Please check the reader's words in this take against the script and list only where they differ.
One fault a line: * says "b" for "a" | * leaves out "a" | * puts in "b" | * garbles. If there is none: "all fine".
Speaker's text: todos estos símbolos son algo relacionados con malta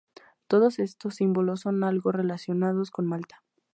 all fine